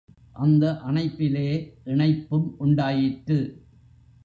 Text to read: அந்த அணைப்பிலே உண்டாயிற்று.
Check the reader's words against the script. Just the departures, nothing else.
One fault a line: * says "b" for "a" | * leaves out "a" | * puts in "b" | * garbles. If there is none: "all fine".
* puts in "இணைப்பும்"